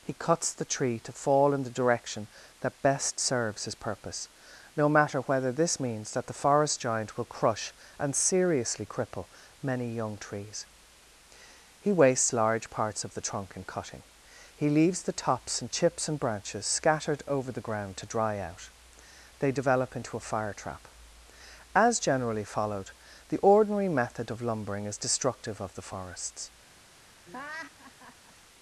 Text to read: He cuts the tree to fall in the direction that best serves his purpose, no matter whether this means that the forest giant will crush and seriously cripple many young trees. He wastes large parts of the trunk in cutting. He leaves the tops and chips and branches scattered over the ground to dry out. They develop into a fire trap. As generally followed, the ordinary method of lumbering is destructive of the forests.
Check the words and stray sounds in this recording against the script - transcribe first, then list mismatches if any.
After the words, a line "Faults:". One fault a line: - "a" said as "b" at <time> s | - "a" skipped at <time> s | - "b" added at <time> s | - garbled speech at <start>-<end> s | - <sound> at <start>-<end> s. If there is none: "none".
He cuts the tree to fall in the direction that best serves his purpose, no matter whether this means that the forest giant will crush and seriously cripple many young trees. He wastes large parts of the trunk in cutting. He leaves the tops and chips and branches scattered over the ground to dry out. They develop into a fire trap. As generally followed, the ordinary method of lumbering is destructive of the forests.
Faults:
- laugh at 27.2-28.3 s